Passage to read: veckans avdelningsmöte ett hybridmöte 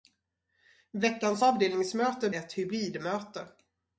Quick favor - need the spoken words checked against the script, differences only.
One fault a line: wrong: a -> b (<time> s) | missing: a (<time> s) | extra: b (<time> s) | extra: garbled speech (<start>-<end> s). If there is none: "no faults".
no faults